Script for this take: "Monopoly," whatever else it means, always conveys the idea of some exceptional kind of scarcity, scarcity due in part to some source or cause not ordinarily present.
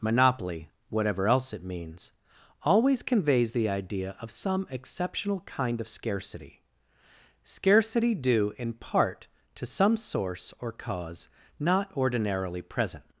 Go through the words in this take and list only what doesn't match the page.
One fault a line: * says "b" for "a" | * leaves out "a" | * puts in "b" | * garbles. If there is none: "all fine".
all fine